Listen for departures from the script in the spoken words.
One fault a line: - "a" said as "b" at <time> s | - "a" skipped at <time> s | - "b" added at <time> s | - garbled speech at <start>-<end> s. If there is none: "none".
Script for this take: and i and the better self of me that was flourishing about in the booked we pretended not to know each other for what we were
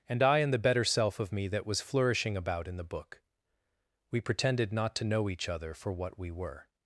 - "booked" said as "book" at 2.8 s